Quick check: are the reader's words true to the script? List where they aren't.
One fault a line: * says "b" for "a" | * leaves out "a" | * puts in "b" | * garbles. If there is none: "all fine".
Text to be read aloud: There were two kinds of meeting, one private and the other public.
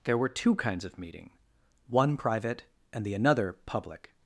* says "another" for "other"